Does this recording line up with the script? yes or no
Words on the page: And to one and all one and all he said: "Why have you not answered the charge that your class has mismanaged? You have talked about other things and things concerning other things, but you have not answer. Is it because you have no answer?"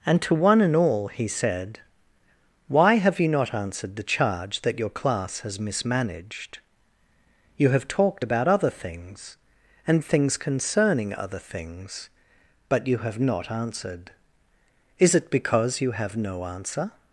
no